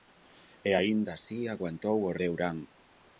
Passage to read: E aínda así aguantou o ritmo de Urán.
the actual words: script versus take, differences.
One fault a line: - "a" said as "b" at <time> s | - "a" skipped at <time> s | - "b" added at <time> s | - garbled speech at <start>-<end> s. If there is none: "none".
- "ritmo" skipped at 2.2 s